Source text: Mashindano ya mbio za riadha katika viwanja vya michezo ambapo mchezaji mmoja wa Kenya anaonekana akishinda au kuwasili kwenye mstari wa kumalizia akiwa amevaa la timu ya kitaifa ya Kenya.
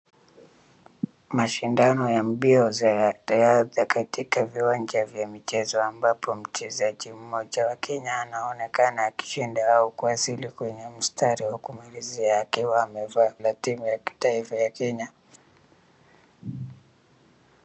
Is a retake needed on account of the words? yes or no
no